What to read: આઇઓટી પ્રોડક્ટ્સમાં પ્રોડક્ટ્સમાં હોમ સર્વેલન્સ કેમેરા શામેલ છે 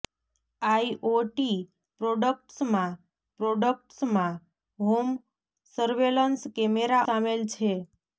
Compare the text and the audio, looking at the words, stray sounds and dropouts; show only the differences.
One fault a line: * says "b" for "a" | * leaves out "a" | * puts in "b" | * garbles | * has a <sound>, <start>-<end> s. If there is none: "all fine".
all fine